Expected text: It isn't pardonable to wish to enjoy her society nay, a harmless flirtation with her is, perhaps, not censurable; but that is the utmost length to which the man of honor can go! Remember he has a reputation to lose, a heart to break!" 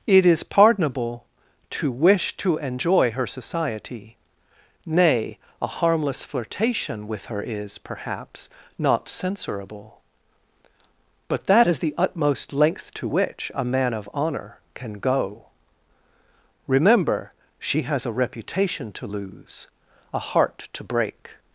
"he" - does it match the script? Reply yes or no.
no